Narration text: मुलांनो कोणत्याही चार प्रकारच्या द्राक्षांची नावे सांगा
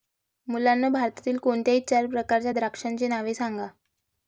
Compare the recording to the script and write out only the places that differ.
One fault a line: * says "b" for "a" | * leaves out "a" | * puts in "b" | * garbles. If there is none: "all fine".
* puts in "भारतातील"